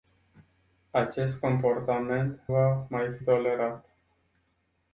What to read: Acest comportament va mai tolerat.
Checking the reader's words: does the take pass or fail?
pass